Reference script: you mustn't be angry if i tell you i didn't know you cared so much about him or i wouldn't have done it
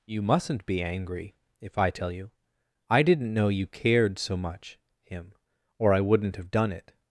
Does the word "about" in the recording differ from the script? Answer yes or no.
yes